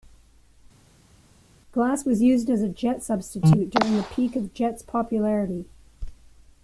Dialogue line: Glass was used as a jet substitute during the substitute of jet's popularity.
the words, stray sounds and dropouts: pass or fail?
fail